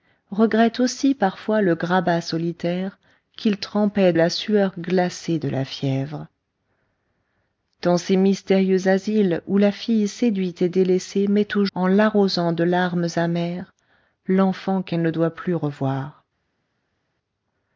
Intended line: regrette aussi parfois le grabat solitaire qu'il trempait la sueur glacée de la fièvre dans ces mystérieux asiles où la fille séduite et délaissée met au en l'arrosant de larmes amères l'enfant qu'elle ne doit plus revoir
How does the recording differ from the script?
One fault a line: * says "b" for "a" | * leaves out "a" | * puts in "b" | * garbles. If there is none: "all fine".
all fine